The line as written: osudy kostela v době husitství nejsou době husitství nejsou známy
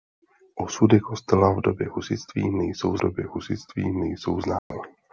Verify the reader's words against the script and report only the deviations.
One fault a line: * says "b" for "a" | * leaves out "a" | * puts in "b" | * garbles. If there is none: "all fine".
all fine